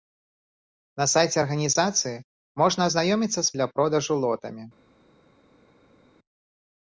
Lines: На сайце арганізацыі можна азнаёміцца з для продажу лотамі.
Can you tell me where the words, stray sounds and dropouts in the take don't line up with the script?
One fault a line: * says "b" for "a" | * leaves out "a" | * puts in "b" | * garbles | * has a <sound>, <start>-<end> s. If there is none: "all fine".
all fine